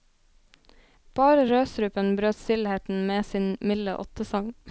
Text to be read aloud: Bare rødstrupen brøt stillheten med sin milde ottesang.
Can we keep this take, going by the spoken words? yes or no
yes